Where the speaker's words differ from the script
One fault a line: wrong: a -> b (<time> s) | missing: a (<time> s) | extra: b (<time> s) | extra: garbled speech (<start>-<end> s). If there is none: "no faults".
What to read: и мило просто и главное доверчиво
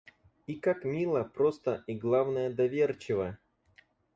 extra: как (0.6 s)